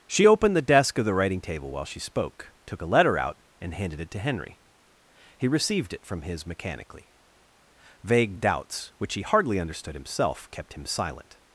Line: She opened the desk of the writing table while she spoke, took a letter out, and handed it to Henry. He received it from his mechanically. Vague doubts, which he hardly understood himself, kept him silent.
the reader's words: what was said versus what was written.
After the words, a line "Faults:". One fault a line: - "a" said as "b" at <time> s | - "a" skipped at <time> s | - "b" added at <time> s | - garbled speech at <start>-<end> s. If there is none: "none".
She opened the desk of the writing table while she spoke, took a letter out, and handed it to Henry. He received it from his mechanically. Vague doubts, which he hardly understood himself, kept him silent.
Faults:
none